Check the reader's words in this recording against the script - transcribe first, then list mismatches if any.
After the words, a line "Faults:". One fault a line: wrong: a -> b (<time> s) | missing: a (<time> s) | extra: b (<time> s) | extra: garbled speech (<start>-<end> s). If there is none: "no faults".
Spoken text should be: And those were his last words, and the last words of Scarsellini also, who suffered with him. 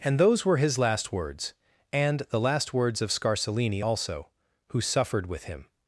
And those were his last words, and the last words of Scarsellini also, who suffered with him.
Faults:
no faults